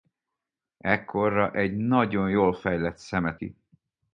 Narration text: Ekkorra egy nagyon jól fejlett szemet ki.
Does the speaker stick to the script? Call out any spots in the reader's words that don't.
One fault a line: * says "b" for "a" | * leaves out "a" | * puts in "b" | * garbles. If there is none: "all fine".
all fine